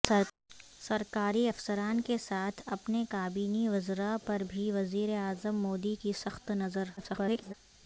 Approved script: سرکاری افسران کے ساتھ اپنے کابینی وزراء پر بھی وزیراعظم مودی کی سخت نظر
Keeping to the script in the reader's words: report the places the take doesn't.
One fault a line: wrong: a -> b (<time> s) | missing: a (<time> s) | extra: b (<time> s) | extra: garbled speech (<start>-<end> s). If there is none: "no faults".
extra: garbled speech (7.0-7.5 s)